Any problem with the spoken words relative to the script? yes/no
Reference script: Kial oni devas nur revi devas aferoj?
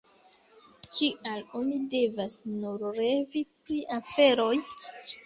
yes